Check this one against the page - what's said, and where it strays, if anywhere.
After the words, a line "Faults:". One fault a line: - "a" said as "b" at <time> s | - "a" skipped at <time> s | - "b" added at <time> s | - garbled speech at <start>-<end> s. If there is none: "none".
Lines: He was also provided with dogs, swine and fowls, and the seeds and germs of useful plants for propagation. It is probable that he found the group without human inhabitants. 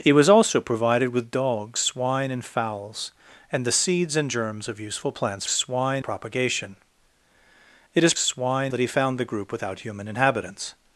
He was also provided with dogs, swine and fowls, and the seeds and germs of useful plants swine propagation. It is swine that he found the group without human inhabitants.
Faults:
- "for" said as "swine" at 5.5 s
- "probable" said as "swine" at 8.2 s